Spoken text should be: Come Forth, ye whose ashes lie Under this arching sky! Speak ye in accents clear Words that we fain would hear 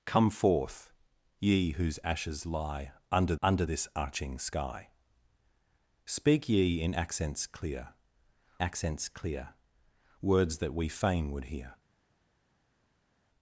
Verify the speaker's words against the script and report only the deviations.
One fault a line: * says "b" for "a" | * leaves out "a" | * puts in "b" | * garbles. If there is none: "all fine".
* puts in "Under"
* puts in "accents clear"